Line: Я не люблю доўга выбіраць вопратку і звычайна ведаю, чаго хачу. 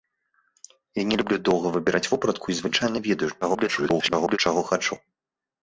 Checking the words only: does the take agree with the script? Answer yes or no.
no